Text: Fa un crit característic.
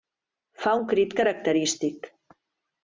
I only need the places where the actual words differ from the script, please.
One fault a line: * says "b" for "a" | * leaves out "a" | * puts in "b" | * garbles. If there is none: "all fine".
all fine